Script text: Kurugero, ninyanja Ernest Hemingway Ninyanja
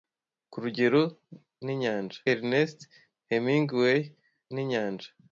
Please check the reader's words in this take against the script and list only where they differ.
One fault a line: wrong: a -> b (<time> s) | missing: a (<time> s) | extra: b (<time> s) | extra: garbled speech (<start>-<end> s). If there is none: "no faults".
no faults